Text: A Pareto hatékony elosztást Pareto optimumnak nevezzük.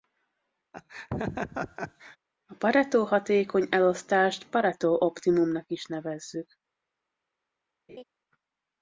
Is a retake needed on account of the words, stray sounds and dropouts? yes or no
yes